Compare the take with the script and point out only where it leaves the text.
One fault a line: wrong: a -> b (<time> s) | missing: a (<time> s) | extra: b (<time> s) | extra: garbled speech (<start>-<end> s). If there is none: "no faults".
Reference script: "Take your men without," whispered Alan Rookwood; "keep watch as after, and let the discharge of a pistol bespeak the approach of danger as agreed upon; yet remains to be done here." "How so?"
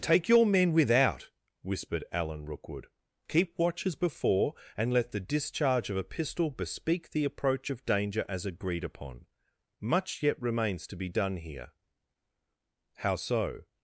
wrong: after -> before (4.0 s)
extra: much (9.8 s)